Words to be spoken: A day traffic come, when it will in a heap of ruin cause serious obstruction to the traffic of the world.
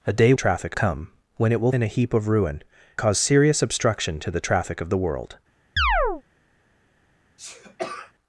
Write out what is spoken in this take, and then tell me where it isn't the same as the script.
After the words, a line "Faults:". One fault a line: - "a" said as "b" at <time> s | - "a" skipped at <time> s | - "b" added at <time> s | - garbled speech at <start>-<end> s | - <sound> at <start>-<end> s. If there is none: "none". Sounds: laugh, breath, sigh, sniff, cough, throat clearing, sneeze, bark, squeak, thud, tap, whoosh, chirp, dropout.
A day traffic come, when it will in a heap of ruin cause serious obstruction to the traffic of the world.
Faults:
- chirp at 5.8-6.2 s
- sneeze at 7.4-8.1 s